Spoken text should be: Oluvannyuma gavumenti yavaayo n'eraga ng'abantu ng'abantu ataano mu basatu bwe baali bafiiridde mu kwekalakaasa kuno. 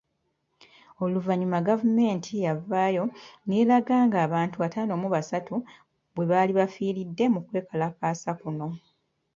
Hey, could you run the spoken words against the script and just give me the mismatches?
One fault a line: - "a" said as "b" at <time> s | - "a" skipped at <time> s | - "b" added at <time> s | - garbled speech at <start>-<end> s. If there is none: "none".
- "ng'abantu" skipped at 4.6 s